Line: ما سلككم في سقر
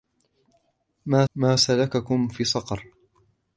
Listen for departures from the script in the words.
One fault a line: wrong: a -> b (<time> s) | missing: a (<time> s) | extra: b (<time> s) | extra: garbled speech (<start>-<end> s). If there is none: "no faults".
extra: ما (1.3 s)